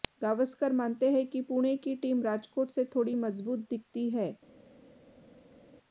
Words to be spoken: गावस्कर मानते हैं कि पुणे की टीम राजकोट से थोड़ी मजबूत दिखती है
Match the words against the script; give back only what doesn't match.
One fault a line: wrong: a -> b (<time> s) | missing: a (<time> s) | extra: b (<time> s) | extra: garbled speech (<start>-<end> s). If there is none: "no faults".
no faults